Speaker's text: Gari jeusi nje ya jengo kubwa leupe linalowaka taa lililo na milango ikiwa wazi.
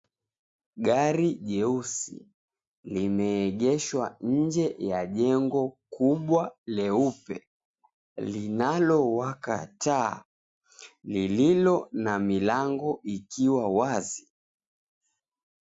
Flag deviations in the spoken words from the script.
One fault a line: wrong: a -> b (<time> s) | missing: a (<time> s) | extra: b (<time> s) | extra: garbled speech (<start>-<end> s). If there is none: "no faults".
extra: limeegeshwa (2.9 s)